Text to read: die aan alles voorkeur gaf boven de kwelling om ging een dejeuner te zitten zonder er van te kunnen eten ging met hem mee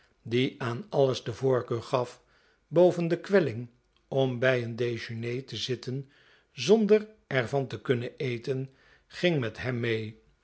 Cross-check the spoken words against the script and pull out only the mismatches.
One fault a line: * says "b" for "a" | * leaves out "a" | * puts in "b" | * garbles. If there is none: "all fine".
* puts in "de"
* says "bij" for "ging"